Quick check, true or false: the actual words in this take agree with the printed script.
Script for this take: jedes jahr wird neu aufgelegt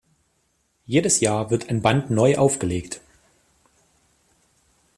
false